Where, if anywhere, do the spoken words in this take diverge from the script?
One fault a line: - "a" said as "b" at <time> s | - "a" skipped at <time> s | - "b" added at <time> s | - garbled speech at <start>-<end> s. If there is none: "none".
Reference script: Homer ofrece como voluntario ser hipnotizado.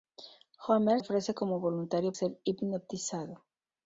none